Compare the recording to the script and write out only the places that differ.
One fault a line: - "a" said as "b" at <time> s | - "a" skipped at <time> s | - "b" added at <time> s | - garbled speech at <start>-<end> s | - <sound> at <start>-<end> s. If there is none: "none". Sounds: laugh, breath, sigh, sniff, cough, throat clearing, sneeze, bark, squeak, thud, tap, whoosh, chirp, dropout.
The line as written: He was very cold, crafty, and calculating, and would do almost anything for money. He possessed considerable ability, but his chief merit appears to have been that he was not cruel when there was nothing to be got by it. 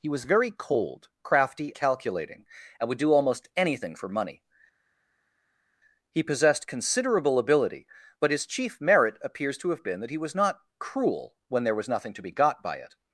- "and" skipped at 1.7 s